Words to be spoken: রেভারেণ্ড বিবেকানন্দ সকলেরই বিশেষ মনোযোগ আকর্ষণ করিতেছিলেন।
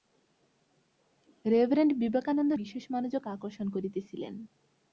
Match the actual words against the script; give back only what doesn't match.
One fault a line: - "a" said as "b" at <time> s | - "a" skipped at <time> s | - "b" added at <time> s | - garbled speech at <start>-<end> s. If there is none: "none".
- "সকলেরই" skipped at 2.5 s